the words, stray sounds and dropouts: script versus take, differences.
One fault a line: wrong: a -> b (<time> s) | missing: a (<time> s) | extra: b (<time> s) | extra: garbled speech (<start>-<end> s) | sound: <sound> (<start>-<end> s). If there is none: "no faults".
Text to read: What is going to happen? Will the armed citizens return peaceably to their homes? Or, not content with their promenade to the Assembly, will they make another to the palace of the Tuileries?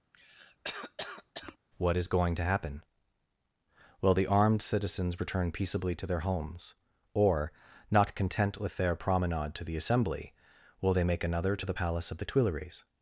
sound: cough (0.1-1.6 s)